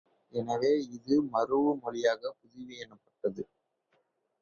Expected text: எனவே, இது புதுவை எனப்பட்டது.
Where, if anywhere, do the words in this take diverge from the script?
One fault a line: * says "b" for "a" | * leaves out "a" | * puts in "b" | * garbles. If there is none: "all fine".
* puts in "மரூஉ மொழியாகப்"